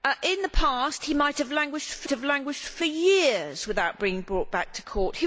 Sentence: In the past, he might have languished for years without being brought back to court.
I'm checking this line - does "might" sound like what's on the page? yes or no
yes